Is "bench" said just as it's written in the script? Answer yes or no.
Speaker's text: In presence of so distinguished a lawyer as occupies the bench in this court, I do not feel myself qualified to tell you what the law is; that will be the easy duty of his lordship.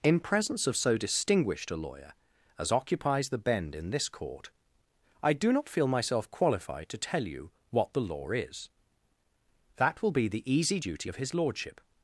no